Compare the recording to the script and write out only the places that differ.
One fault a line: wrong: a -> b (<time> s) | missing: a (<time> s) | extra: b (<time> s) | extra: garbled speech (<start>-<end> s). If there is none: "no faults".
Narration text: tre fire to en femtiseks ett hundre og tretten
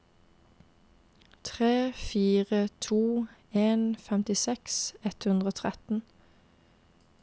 no faults